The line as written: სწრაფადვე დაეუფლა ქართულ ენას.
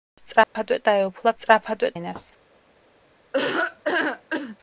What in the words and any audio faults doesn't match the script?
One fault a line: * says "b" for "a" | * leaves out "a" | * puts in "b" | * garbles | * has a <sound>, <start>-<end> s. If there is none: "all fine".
* has a dropout, 0.4-0.6 s
* says "სწრაფადვე" for "ქართულ"
* has a laugh, 3.3-4.6 s